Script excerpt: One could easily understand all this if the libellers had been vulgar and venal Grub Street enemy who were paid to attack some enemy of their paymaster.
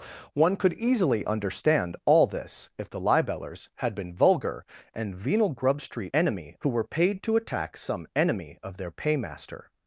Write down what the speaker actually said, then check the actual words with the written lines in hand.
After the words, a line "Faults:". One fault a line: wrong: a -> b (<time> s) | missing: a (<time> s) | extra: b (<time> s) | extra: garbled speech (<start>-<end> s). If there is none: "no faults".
One could easily understand all this if the libellers had been vulgar and venal Grub Street enemy who were paid to attack some enemy of their paymaster.
Faults:
no faults